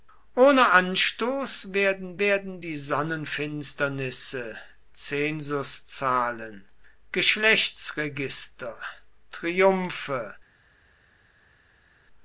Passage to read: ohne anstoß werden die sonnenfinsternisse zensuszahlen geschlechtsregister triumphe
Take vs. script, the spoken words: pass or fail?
fail